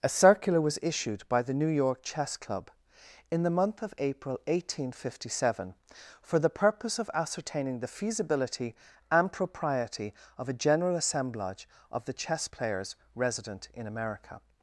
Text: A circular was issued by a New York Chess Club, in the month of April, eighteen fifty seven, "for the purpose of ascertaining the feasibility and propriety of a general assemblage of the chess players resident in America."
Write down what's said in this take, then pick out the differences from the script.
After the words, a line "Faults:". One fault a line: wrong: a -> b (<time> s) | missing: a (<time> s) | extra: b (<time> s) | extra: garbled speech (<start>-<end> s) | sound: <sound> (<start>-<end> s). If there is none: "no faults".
A circular was issued by the New York Chess Club, in the month of April, eighteen fifty seven, "for the purpose of ascertaining the feasibility and propriety of a general assemblage of the chess players resident in America."
Faults:
wrong: a -> the (1.4 s)